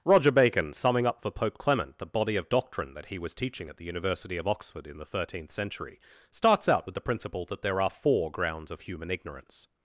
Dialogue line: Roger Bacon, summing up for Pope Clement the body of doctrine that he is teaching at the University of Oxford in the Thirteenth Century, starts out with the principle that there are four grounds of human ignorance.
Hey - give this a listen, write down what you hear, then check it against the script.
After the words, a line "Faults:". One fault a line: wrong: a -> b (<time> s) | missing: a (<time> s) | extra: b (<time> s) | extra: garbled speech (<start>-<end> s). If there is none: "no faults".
Roger Bacon, summing up for Pope Clement the body of doctrine that he was teaching at the University of Oxford in the Thirteenth Century, starts out with the principle that there are four grounds of human ignorance.
Faults:
wrong: is -> was (3.2 s)